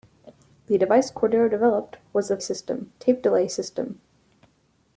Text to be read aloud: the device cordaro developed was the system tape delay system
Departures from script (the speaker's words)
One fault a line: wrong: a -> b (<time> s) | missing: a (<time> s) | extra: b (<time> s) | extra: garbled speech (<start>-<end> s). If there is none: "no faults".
no faults